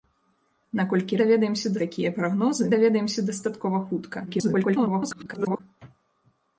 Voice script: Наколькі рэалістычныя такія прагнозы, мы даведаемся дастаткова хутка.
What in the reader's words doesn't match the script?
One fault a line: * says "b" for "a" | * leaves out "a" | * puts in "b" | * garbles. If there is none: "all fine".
* says "даведаемся" for "рэалістычныя"
* leaves out "мы"
* garbles